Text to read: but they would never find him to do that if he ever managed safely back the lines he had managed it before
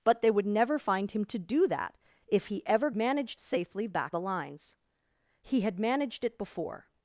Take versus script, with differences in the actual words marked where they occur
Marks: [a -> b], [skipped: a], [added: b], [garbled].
but they would never find him to do that if he ever managed safely back the lines he had managed it before